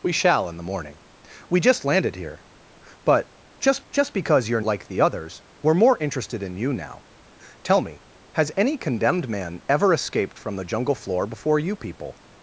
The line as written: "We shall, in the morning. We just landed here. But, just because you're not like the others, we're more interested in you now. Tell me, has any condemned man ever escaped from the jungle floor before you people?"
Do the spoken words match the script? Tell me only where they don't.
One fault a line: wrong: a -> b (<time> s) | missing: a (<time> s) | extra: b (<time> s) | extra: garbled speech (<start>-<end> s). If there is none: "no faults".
extra: just (3.9 s)
missing: not (4.6 s)